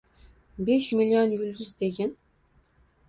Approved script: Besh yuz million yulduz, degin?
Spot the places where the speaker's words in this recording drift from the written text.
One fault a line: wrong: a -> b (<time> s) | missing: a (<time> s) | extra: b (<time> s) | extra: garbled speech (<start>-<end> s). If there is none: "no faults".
missing: yuz (0.9 s)